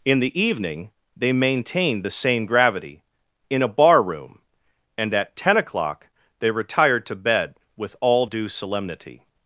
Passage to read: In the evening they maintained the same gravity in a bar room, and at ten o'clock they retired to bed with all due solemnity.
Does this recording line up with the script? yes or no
yes